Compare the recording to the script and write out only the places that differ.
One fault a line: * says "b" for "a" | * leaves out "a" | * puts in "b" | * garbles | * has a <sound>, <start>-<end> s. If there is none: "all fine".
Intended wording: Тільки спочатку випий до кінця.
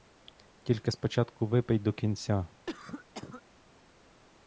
* has a cough, 2.7-3.4 s